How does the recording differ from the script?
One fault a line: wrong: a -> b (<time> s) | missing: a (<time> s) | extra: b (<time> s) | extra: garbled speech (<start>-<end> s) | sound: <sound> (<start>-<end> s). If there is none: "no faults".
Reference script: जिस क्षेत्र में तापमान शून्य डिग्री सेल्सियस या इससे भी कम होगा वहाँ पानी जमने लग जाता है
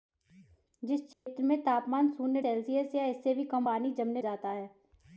sound: dropout (1.1-1.3 s)
missing: डिग्री (2.4 s)
missing: होगा वहाँ (3.7 s)
missing: लग (4.2 s)